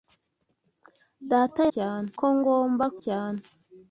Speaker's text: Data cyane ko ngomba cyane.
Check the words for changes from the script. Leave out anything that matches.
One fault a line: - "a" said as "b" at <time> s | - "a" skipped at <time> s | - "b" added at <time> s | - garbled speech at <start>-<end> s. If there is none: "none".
none